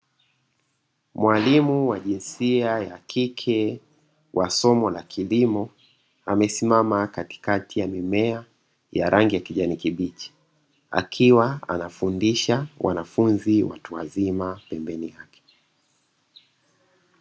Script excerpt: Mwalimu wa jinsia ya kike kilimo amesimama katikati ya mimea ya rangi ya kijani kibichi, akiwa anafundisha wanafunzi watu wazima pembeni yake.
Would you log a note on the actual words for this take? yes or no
yes